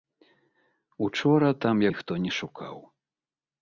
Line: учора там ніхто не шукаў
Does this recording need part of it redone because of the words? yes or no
no